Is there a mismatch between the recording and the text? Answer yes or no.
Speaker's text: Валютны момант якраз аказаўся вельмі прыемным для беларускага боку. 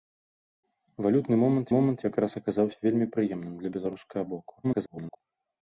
yes